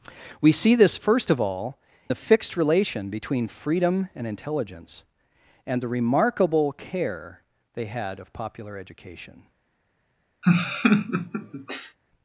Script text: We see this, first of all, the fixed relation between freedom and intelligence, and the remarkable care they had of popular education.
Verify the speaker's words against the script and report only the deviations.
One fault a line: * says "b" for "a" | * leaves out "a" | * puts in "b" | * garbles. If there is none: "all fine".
all fine